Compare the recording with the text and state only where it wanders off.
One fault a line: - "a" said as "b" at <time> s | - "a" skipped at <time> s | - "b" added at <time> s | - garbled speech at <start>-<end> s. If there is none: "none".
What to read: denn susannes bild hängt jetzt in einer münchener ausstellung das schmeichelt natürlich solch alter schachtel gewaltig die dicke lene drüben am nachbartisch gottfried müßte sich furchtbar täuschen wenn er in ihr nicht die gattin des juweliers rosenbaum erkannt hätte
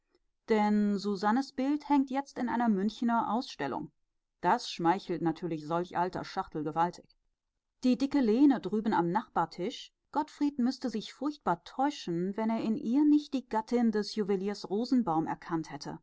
none